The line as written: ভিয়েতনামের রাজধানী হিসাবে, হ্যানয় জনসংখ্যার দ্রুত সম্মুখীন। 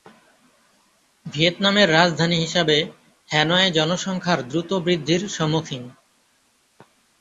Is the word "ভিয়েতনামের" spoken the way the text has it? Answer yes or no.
yes